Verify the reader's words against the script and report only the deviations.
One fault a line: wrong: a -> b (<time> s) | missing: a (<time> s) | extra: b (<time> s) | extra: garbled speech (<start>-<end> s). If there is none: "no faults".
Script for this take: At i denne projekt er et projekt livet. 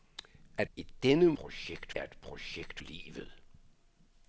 no faults